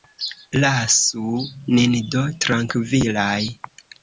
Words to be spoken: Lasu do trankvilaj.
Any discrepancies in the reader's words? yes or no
yes